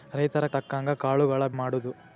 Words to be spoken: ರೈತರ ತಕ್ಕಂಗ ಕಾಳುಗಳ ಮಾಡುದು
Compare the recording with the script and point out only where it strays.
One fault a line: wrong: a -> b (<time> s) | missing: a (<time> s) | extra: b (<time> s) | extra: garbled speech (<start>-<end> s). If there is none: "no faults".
no faults